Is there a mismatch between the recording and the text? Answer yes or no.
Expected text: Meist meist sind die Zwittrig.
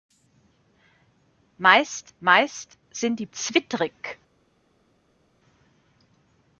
no